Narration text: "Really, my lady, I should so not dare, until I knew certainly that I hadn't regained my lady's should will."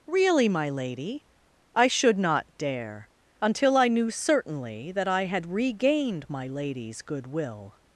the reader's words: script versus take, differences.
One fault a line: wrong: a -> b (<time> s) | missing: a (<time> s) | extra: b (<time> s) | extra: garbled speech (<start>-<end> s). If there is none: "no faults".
missing: so (2.2 s)
wrong: hadn't -> had (5.2 s)
wrong: should -> good (7.0 s)